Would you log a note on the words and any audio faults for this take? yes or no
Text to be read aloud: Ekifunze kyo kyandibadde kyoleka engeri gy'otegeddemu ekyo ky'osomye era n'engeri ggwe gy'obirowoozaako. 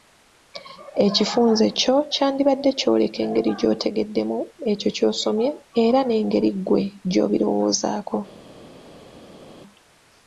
no